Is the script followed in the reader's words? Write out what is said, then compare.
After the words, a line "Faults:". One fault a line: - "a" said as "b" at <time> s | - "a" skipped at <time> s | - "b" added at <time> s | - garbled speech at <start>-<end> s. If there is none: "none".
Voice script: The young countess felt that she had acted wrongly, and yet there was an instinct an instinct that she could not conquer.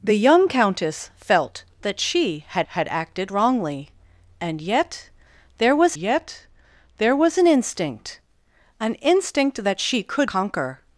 The young countess felt that she had had acted wrongly, and yet there was yet there was an instinct an instinct that she could conquer.
Faults:
- "had" added at 2.7 s
- "yet there was" added at 5.9 s
- "not" skipped at 10.3 s